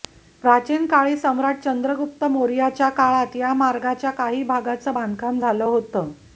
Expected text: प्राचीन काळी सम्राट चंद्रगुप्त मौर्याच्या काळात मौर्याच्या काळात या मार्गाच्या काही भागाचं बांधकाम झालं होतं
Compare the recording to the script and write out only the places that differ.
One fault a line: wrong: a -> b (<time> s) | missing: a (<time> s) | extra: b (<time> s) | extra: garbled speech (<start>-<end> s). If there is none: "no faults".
missing: मौर्याच्या काळात (3.4 s)